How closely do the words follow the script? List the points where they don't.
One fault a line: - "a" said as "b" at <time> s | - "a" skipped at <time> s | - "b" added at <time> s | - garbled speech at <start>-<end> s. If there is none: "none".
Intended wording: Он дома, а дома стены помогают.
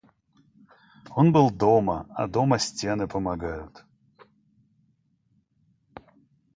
- "был" added at 1.3 s